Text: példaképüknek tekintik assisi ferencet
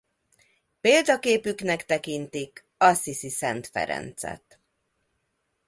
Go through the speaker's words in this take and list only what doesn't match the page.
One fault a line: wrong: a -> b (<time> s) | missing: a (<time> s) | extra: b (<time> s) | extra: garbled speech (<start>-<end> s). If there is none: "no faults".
extra: szent (3.3 s)